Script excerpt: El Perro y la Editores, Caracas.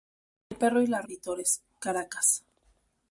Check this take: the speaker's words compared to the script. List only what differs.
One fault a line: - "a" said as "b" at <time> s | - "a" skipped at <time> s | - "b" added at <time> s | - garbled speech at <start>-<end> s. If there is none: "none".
none